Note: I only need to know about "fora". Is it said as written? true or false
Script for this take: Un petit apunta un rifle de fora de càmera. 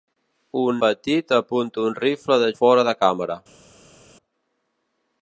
true